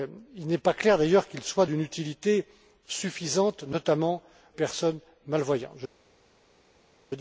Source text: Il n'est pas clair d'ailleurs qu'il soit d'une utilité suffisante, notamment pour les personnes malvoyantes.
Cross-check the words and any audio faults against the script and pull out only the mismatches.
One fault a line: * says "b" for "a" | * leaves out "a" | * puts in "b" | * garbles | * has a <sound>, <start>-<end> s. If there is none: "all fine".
* leaves out "pour les"